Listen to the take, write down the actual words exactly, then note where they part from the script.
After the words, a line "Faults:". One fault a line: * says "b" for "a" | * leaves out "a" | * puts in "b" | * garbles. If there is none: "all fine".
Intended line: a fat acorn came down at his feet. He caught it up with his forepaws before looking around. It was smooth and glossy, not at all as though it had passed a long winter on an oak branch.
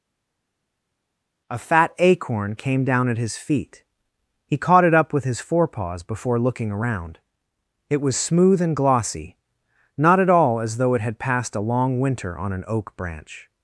a fat acorn came down at his feet. He caught it up with his forepaws before looking around. It was smooth and glossy, not at all as though it had passed a long winter on an oak branch.
Faults:
all fine